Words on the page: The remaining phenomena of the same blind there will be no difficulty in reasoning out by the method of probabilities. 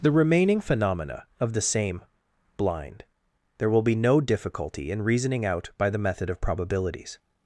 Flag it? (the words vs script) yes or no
no